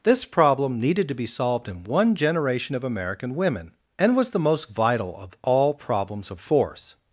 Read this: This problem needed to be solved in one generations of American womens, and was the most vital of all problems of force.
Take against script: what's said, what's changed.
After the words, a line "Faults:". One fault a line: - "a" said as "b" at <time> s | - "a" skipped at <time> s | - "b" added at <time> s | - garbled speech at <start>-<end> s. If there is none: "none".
This problem needed to be solved in one generation of American women, and was the most vital of all problems of force.
Faults:
- "generations" said as "generation" at 2.1 s
- "womens" said as "women" at 3.4 s